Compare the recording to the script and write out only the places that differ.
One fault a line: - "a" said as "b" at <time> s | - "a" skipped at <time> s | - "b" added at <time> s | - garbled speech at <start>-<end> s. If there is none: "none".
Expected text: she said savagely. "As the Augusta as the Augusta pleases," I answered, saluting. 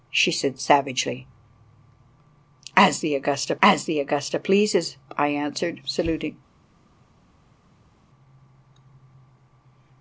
none